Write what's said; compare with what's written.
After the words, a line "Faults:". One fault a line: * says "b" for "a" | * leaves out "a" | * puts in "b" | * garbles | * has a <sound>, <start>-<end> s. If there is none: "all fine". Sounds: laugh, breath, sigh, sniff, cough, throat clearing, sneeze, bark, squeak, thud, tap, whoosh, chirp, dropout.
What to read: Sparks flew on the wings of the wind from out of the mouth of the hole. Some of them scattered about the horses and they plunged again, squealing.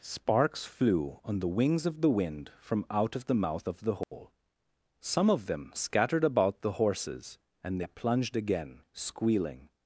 Sparks flew on the wings of the wind from out of the mouth of the hole. Some of them scattered about the horses and they plunged again, squealing.
Faults:
* has a dropout, 4.0-4.1 s